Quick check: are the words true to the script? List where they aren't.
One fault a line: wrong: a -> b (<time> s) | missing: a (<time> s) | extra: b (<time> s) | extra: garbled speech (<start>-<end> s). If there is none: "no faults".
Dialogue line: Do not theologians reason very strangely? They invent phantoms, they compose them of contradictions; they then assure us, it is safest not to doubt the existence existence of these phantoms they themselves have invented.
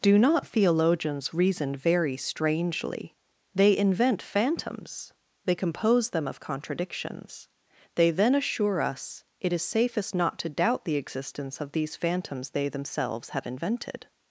missing: existence (11.6 s)